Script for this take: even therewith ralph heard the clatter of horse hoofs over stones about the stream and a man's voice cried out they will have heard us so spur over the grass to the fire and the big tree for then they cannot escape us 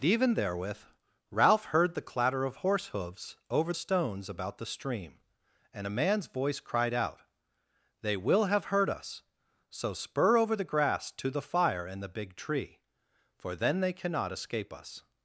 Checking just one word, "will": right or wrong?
right